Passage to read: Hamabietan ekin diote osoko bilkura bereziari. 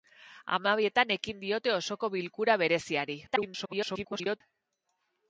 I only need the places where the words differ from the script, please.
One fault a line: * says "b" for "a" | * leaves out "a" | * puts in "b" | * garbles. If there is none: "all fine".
* garbles